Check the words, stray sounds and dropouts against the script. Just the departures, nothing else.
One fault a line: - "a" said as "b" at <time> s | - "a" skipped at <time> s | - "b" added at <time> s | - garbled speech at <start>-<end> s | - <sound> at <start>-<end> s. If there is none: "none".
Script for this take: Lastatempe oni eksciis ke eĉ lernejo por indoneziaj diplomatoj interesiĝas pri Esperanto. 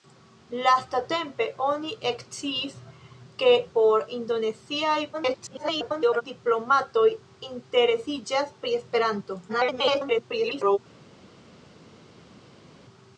- "eĉ lernejo" skipped at 3.5 s
- garbled speech at 5.1-6.2 s
- garbled speech at 9.5-10.8 s